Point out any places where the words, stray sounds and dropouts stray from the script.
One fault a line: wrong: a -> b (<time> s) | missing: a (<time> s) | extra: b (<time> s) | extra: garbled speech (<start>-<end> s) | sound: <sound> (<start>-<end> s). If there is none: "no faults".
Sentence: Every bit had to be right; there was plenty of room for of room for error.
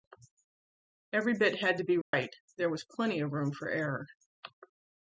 sound: dropout (2.0-2.1 s)
missing: of room for (3.7 s)